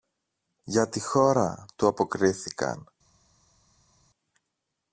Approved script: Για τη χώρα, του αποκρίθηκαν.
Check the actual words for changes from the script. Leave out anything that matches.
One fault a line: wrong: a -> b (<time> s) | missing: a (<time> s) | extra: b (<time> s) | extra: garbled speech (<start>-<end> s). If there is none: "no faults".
no faults